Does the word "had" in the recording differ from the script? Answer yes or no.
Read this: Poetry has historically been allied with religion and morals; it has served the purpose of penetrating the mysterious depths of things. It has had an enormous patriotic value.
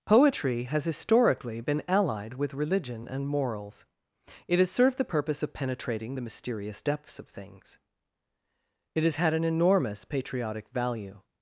no